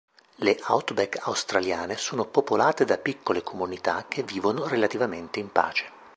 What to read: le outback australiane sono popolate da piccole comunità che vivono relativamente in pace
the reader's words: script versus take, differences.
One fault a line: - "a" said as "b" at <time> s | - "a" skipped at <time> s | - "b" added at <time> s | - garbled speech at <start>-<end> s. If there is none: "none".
none